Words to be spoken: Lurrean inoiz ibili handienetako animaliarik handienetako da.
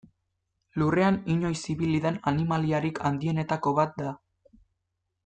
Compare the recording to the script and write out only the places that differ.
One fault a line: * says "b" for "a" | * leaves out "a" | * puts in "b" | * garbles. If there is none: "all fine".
* says "den" for "handienetako"
* puts in "bat"